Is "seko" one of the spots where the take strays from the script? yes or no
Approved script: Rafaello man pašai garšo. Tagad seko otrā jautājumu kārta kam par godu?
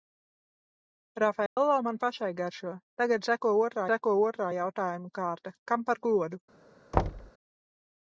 no